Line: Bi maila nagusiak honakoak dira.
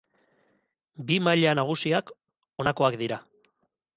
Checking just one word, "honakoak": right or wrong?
right